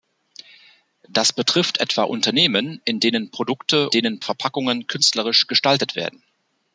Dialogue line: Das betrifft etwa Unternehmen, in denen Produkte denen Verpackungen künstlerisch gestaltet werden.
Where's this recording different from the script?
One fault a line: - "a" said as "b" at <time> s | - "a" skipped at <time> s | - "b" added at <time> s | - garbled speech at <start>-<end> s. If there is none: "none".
none